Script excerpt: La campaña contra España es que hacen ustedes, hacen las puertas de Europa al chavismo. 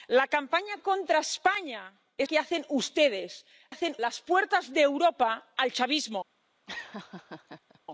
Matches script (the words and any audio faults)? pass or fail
fail